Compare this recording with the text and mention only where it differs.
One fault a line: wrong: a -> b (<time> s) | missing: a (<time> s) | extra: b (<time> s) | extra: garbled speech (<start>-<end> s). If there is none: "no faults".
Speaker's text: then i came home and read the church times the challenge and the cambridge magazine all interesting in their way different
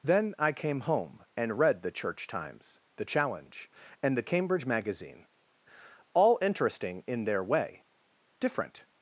no faults